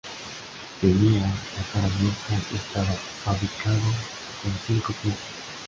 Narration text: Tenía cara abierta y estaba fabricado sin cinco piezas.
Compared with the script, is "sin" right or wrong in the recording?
wrong